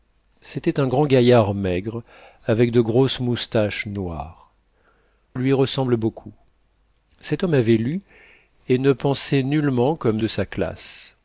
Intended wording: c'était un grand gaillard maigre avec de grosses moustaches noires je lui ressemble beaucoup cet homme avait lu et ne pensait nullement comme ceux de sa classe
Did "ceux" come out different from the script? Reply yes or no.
yes